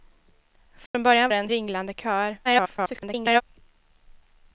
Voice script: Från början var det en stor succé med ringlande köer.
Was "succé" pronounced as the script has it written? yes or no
no